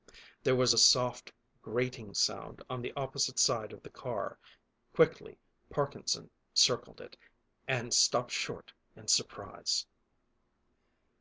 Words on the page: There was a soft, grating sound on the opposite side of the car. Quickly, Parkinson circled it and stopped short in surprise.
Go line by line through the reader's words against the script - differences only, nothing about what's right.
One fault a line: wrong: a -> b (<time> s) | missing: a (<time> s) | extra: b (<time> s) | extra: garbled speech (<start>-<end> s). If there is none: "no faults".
no faults